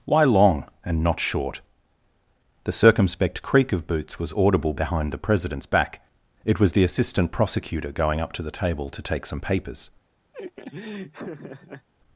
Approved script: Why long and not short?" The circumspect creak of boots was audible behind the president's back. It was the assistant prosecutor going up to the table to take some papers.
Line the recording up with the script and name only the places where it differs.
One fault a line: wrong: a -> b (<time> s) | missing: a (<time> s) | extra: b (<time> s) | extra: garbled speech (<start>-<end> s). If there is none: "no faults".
no faults